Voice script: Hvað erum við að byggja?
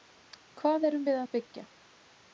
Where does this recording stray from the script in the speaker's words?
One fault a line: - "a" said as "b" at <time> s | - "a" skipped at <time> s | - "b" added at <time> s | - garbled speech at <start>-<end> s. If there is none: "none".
none